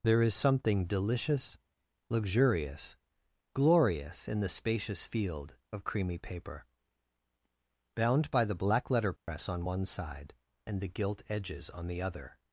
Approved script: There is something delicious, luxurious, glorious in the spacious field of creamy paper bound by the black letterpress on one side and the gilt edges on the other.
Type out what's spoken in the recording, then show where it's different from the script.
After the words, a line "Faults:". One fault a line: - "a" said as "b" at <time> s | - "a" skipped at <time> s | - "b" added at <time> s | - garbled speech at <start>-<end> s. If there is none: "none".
There is something delicious, luxurious, glorious in the spacious field of creamy paper bound by the black letterpress on one side and the gilt edges on the other.
Faults:
none